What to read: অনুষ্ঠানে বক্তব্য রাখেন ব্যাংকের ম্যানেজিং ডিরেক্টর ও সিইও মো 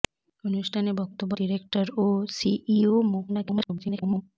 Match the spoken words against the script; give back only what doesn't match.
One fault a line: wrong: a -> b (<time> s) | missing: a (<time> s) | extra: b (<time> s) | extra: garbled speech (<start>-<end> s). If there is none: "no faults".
missing: রাখেন ব্যাংকের ম্যানেজিং (1.3 s)
extra: garbled speech (3.3-4.2 s)